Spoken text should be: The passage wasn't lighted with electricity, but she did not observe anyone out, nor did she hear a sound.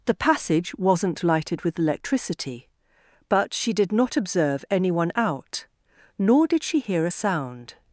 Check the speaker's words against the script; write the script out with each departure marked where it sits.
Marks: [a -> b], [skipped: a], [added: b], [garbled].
The passage wasn't lighted with electricity, but she did not observe anyone out, nor did she hear a sound.